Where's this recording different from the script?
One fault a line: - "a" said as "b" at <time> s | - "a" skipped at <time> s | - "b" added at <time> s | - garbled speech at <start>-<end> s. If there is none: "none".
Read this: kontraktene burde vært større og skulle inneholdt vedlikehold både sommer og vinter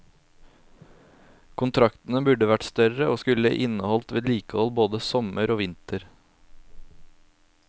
none